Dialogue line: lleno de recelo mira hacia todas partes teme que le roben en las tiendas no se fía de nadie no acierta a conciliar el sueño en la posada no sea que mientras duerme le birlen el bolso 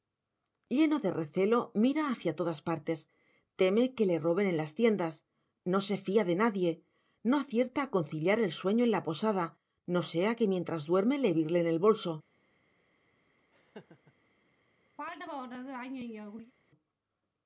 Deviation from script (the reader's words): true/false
false